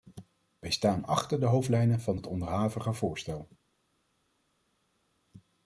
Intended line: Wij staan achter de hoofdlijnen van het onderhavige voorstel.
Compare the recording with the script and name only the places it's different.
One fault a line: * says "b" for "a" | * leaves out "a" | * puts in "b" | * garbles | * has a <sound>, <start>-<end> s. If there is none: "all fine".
all fine